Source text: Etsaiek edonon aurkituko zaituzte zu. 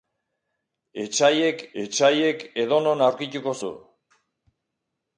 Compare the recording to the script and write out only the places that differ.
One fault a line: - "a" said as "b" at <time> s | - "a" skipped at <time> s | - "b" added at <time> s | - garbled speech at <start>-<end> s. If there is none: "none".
- "etsaiek" added at 1.8 s
- "zaituzte" skipped at 3.6 s